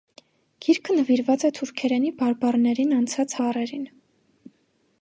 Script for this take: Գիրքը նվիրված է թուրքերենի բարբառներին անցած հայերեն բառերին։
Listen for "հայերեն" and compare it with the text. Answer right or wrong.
wrong